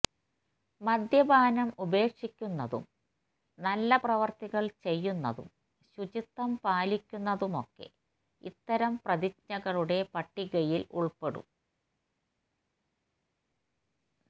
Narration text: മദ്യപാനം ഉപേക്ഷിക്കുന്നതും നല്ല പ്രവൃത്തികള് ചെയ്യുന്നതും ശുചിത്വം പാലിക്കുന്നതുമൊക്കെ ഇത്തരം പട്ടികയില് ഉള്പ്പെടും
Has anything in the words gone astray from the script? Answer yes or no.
yes